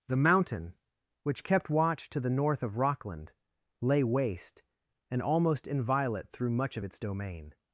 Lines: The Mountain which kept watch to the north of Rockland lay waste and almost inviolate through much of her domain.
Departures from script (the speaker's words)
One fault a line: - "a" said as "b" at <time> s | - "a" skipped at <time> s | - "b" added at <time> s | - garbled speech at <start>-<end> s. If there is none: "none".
- "her" said as "its" at 6.8 s